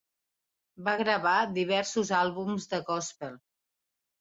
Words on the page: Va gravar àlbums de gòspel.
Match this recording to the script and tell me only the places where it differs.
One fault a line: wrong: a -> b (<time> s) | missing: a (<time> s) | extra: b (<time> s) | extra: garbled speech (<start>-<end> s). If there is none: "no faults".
extra: diversos (1.6 s)